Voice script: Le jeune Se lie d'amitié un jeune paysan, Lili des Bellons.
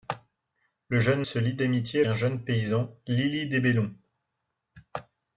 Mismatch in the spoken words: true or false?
false